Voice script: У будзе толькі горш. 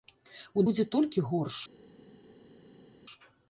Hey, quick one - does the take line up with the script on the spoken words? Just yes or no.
yes